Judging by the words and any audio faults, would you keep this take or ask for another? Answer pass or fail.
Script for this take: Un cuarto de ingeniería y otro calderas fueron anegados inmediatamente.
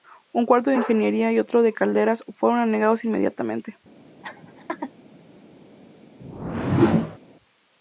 fail